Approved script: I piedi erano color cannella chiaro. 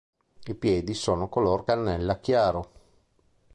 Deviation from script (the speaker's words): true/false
true